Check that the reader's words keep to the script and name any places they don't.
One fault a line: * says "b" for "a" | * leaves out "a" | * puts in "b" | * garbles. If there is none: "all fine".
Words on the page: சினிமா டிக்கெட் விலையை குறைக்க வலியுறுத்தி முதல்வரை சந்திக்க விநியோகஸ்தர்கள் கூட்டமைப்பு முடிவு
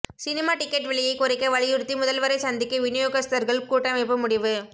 all fine